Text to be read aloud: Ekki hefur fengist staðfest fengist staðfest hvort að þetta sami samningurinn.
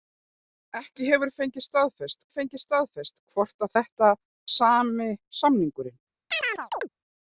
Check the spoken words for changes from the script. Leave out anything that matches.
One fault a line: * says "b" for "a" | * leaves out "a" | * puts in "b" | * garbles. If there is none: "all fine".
all fine